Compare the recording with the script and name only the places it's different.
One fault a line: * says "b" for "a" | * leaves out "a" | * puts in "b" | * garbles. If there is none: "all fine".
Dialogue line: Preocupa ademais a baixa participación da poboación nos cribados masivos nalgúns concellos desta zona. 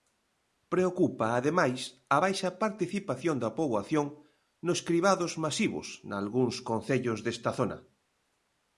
all fine